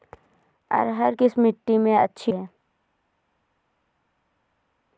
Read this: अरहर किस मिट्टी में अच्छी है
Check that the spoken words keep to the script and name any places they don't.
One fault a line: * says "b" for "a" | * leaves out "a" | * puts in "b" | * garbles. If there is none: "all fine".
all fine